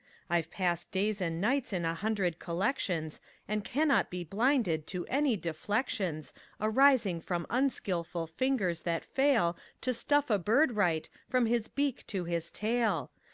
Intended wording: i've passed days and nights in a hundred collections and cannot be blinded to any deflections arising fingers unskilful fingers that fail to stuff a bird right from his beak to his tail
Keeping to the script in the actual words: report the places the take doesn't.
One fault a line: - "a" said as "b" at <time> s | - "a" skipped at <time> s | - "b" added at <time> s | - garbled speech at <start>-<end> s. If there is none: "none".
- "fingers" said as "from" at 7.2 s